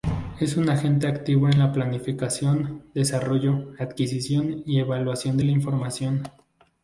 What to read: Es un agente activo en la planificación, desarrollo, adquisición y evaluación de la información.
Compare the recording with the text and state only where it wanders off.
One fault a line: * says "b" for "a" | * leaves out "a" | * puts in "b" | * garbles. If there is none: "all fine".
all fine